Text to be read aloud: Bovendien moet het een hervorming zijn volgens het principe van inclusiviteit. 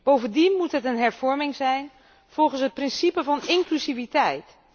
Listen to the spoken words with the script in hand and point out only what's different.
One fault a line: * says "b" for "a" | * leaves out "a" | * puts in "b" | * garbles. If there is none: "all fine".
all fine